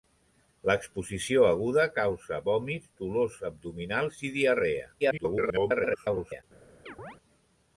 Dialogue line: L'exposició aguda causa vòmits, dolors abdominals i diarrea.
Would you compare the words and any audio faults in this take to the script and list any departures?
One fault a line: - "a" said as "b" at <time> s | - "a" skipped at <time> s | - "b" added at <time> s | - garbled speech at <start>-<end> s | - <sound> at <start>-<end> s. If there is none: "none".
- garbled speech at 5.0-6.4 s
- chirp at 6.9-7.2 s